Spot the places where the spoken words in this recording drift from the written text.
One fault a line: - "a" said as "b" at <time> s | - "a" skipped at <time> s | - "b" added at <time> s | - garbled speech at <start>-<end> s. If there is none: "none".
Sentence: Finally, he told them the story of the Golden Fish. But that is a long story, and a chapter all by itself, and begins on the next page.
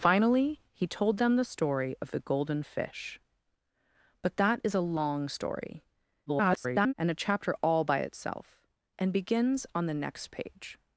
- garbled speech at 6.3-6.9 s